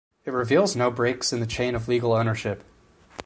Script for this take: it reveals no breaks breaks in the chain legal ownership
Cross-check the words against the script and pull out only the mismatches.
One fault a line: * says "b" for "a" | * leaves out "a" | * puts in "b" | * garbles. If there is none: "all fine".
* leaves out "breaks"
* puts in "of"